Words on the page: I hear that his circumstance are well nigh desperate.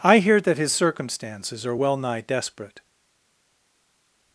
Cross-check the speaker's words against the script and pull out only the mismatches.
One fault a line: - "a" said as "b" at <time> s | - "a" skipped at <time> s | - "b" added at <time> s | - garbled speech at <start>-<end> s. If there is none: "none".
- "circumstance" said as "circumstances" at 0.7 s